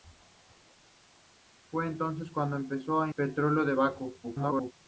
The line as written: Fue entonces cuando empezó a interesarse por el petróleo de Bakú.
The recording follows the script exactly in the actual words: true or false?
false